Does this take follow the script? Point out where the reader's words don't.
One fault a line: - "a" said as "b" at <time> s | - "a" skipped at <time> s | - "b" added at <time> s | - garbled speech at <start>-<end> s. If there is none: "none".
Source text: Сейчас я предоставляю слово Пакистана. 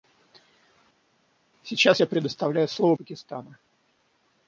none